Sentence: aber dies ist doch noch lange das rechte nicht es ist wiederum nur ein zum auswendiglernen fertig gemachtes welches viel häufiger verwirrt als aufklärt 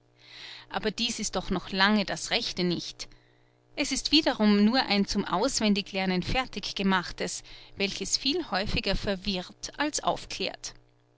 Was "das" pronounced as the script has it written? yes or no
yes